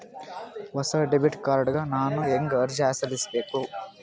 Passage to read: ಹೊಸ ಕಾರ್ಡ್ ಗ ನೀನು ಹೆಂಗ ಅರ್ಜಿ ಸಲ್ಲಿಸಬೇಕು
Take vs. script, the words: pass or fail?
fail